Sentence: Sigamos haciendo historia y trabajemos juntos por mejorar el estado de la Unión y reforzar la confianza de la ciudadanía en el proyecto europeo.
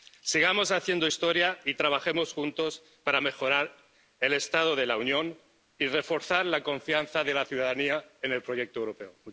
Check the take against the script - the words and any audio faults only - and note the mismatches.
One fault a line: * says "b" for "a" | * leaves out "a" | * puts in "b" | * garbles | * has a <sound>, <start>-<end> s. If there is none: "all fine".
* says "para" for "por"